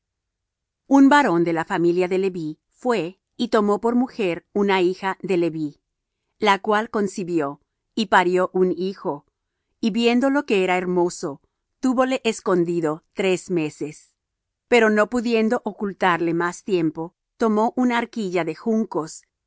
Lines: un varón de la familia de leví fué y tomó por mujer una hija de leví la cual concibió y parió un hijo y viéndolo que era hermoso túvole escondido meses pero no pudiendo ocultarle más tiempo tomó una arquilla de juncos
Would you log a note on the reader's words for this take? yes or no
yes